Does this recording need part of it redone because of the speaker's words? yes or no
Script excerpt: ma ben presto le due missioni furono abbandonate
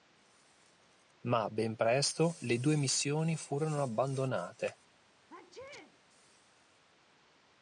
no